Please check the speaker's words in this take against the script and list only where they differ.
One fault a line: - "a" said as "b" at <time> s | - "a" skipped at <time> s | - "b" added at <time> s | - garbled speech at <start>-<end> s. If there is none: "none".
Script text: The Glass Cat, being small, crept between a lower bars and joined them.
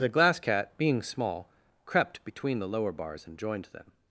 - "a" said as "the" at 2.6 s